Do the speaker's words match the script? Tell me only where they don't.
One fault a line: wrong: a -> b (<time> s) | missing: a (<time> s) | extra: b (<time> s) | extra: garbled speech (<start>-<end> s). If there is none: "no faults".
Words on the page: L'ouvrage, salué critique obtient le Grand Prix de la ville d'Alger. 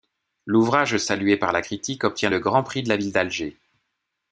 extra: par la (1.4 s)